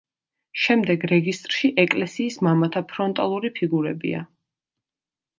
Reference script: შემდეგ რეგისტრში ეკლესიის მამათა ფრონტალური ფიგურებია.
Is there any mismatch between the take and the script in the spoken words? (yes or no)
no